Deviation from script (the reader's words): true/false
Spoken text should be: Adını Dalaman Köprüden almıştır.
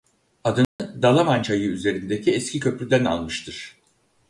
true